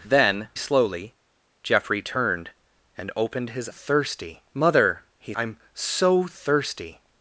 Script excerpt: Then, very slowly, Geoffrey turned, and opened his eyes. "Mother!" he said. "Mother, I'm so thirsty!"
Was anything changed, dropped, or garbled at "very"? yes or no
yes